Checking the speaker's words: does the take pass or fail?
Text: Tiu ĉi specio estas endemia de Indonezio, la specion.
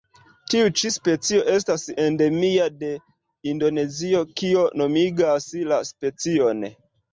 fail